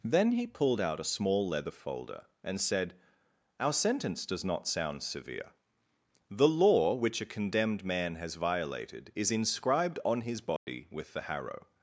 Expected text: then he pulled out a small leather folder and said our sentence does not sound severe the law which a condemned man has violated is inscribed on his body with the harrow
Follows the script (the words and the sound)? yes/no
no